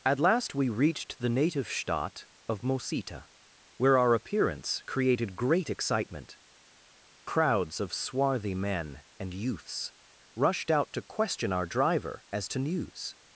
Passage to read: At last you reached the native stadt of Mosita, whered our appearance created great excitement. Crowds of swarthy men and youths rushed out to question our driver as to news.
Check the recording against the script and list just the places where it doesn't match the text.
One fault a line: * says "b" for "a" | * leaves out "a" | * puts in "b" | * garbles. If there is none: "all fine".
* says "we" for "you"
* says "where" for "whered"